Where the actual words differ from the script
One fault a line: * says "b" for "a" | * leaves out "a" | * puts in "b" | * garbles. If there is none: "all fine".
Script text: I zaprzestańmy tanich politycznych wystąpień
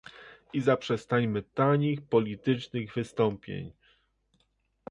all fine